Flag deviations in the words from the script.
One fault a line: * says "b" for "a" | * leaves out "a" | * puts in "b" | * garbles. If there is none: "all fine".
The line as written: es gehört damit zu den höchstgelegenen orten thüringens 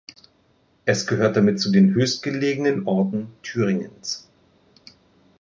all fine